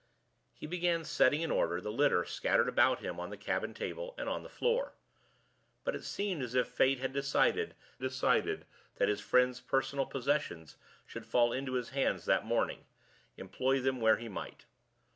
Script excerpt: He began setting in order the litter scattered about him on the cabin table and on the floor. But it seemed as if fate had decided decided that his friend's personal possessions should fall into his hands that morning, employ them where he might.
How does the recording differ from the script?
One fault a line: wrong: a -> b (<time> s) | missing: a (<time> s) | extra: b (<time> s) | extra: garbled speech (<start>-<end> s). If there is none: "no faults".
no faults